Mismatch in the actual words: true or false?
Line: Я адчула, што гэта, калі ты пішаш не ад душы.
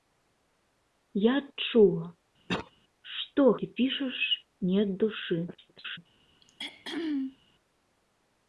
true